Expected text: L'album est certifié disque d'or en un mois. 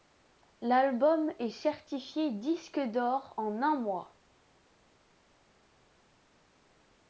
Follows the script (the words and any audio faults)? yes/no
yes